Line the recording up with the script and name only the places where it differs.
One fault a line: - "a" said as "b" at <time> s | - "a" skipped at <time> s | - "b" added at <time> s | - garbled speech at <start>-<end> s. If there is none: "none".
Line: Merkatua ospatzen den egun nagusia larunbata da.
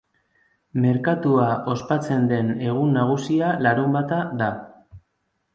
none